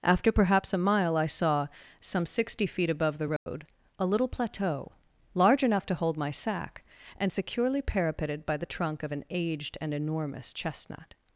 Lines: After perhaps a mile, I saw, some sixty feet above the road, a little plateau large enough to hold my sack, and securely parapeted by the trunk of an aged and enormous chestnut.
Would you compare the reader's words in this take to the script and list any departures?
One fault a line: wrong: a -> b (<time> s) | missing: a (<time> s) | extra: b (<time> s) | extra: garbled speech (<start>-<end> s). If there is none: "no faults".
no faults